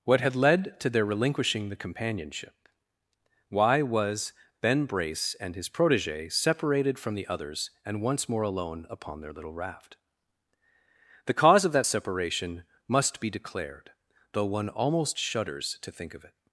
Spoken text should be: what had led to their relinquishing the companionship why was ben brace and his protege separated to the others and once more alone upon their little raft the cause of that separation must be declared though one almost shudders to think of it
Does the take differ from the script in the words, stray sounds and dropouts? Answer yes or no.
yes